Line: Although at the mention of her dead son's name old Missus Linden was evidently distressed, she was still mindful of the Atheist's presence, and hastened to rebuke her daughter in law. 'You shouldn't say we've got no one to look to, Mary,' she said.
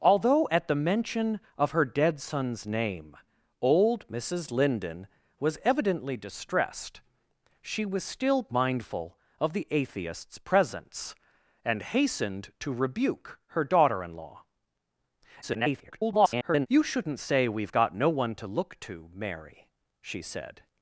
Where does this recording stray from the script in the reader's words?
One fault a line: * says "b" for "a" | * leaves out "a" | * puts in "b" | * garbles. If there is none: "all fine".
* garbles